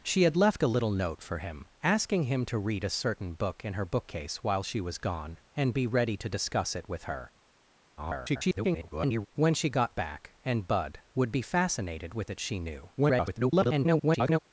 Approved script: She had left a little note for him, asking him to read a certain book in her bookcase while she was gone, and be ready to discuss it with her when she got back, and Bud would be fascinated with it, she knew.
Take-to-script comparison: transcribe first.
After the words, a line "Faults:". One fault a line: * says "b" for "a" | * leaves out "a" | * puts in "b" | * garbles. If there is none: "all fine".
She had left a little note for him, asking him to read a certain book in her bookcase while she was gone, and be ready to discuss it with her [garbled] when she got back, and Bud would be fascinated with it, she knew. [garbled]
Faults:
* garbles
* garbles